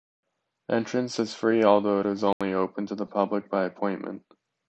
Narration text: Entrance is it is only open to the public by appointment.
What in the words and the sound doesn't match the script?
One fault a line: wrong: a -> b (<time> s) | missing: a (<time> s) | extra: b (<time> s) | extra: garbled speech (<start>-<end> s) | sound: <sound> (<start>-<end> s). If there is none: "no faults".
extra: free although (1.4 s)
sound: dropout (2.3-2.4 s)